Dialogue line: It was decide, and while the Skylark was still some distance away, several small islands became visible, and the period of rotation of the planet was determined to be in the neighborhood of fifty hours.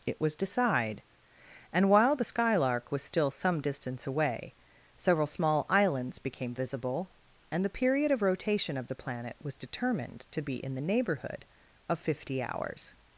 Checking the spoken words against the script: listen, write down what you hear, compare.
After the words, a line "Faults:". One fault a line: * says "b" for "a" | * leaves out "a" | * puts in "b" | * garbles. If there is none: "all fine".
It was decide, and while the Skylark was still some distance away, several small islands became visible, and the period of rotation of the planet was determined to be in the neighborhood of fifty hours.
Faults:
all fine